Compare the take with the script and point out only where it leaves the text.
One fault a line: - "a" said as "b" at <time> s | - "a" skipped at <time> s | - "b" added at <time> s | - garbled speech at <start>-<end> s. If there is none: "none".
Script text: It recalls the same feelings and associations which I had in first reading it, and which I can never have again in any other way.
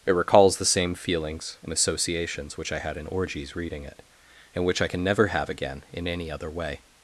- "first" said as "orgies" at 3.1 s